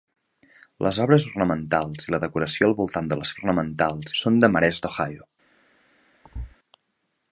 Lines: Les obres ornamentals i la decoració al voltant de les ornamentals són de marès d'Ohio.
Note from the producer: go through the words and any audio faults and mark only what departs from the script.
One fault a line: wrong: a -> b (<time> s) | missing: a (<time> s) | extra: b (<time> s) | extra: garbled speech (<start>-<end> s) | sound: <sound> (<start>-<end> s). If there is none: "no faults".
sound: thud (6.2-6.6 s)